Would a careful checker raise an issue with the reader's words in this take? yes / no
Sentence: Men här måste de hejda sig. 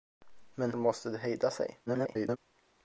yes